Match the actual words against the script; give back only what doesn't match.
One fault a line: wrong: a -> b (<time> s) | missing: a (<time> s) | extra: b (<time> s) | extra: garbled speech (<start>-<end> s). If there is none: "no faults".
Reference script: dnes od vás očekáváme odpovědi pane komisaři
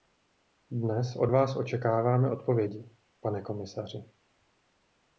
no faults